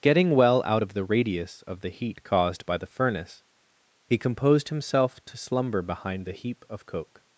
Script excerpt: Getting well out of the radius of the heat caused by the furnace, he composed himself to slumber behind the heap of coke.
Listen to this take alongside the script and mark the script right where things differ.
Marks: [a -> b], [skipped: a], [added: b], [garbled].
Getting well out of the radius of the heat caused by the furnace, he composed himself to slumber behind the heap of coke.